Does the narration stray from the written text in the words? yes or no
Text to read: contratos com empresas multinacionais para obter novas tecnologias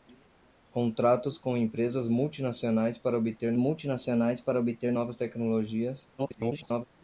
yes